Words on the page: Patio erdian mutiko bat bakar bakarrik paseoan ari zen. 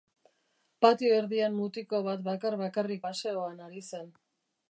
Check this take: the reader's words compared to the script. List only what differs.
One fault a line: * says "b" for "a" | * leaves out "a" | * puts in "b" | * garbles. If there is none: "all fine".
all fine